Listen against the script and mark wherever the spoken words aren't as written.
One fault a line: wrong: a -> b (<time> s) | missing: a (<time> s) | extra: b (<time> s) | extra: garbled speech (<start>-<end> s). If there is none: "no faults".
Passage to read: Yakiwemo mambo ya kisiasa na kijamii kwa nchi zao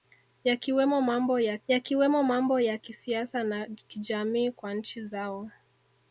extra: yakiwemo mambo ya (1.7 s)